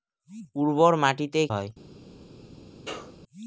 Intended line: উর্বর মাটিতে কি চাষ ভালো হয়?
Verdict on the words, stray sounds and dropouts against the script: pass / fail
fail